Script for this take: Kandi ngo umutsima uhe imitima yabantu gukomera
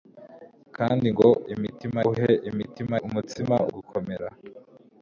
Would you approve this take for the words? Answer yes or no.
no